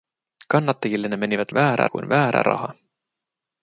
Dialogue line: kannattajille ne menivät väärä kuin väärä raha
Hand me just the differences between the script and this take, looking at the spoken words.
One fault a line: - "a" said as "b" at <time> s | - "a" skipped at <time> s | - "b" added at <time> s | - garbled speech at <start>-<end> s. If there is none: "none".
none